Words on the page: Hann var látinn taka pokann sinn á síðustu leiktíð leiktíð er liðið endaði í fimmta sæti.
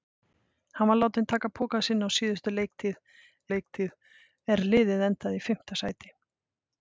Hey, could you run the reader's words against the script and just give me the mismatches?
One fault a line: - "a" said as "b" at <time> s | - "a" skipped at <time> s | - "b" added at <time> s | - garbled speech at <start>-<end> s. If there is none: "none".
none